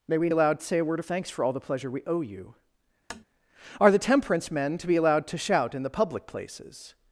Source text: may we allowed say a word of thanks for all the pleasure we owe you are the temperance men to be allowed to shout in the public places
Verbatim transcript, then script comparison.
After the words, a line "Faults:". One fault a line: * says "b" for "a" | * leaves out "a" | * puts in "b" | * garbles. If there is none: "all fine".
may we allowed say a word of thanks for all the pleasure we owe you are the temperance men to be allowed to shout in the public places
Faults:
all fine